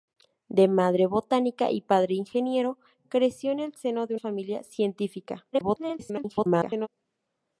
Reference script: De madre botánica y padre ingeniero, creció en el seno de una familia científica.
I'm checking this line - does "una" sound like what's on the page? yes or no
no